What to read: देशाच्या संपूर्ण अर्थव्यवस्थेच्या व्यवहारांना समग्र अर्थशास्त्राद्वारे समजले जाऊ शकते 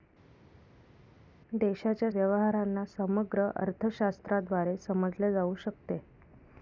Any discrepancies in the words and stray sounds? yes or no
yes